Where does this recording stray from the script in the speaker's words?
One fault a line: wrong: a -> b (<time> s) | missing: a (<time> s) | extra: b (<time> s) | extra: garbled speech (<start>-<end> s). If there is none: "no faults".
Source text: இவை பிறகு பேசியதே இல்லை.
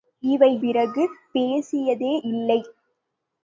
no faults